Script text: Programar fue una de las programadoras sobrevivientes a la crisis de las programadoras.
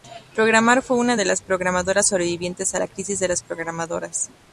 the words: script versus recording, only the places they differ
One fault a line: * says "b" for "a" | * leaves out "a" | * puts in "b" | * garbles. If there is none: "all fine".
all fine